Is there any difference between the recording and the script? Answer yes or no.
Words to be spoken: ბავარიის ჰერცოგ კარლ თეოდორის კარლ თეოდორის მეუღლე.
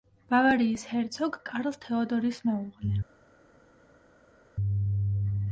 yes